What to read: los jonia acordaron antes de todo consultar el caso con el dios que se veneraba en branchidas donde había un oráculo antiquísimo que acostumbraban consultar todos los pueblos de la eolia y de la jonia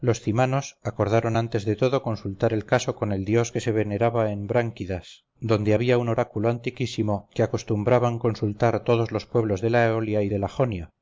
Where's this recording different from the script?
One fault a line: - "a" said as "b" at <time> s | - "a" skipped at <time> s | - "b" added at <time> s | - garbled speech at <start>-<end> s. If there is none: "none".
- "jonia" said as "cymanos" at 0.2 s